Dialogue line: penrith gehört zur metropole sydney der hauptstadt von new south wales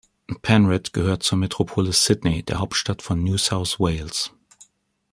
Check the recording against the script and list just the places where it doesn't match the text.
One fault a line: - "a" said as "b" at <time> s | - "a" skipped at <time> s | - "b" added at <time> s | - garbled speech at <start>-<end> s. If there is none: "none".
none